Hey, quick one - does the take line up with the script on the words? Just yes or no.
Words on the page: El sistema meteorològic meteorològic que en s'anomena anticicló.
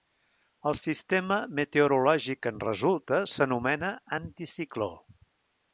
no